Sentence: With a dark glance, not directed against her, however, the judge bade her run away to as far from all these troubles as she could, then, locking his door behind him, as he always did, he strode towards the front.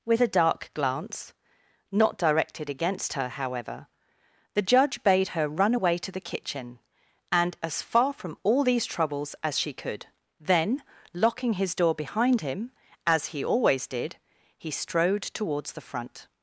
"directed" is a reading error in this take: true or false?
false